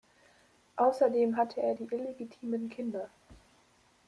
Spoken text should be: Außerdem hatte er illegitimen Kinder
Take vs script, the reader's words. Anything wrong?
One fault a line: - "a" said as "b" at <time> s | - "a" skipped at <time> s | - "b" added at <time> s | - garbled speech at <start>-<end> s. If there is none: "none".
- "die" added at 1.7 s